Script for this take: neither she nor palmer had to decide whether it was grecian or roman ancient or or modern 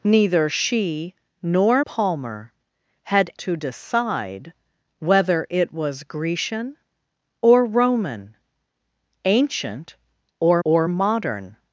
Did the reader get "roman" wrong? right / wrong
right